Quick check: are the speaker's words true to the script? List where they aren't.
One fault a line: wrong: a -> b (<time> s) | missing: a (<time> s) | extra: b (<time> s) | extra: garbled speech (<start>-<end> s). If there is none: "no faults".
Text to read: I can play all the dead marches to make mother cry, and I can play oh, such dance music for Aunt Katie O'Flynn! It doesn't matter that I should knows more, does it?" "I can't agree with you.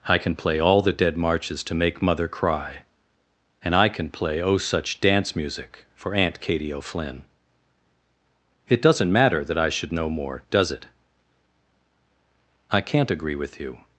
wrong: knows -> know (9.9 s)